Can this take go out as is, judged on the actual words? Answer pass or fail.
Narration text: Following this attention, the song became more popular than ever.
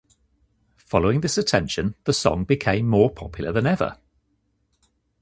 pass